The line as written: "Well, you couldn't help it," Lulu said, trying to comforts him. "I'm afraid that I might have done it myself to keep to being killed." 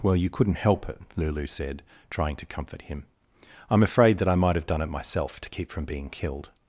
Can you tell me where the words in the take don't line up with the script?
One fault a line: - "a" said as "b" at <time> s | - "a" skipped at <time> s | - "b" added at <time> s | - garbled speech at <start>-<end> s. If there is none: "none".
- "comforts" said as "comfort" at 2.5 s
- "to" said as "from" at 5.7 s